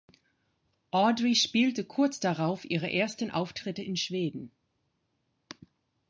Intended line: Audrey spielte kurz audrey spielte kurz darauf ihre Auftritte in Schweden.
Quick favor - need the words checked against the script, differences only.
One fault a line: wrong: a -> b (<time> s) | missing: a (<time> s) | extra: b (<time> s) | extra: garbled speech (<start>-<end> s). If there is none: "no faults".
missing: audrey spielte kurz (2.2 s)
extra: ersten (2.9 s)